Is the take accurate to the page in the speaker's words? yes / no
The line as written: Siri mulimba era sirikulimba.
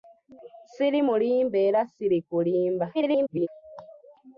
no